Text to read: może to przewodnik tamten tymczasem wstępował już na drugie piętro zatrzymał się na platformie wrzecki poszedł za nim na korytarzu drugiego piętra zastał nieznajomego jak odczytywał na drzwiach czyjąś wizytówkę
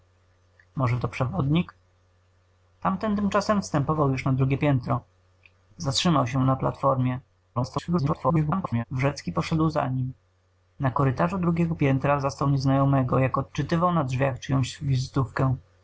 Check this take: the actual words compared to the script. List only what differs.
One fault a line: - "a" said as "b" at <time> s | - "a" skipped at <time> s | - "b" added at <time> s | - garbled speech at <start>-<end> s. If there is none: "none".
- garbled speech at 7.6-8.8 s